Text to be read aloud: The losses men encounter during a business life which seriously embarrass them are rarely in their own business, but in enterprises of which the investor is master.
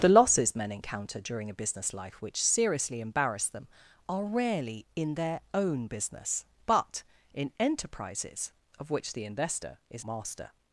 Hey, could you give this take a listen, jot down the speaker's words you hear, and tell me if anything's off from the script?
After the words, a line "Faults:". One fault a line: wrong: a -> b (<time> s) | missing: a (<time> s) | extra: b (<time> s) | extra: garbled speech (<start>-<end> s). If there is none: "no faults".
The losses men encounter during a business life which seriously embarrass them are rarely in their own business, but in enterprises of which the investor is master.
Faults:
no faults